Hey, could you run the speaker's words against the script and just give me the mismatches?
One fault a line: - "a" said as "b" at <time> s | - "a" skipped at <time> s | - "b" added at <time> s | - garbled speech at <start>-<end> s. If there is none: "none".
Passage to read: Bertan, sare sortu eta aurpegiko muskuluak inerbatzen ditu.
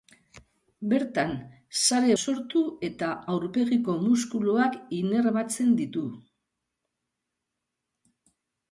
none